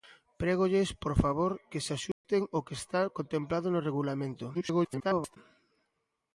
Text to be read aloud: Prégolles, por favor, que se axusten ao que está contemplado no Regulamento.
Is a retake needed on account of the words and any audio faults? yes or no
yes